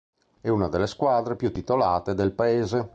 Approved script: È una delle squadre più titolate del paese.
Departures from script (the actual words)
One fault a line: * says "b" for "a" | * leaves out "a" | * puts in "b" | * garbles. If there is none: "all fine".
all fine